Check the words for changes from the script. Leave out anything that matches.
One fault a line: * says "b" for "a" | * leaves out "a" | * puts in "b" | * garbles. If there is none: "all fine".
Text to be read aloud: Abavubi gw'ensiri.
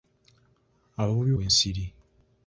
all fine